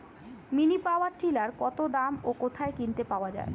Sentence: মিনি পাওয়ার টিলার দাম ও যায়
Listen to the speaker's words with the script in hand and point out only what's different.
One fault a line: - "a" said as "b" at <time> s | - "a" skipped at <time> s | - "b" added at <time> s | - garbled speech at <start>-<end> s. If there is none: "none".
- "কত" added at 1.6 s
- "কোথায় কিনতে পাওয়া" added at 2.4 s